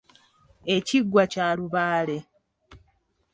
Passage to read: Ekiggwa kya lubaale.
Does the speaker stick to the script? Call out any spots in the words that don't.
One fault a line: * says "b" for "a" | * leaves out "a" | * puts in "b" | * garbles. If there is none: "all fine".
all fine